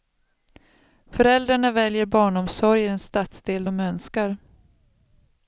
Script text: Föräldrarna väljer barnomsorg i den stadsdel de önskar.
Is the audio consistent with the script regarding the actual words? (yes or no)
yes